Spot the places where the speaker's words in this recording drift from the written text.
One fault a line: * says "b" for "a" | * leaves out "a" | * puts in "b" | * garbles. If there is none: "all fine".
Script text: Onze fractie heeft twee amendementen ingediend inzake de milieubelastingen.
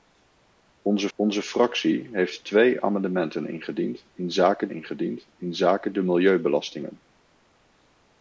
* puts in "onze"
* puts in "ingediend inzake"